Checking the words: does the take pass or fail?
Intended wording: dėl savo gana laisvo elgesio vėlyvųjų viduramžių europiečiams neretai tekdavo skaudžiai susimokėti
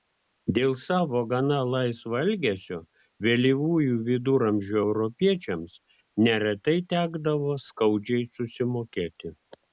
pass